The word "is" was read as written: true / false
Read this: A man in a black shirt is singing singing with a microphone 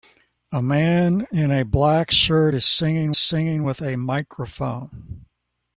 true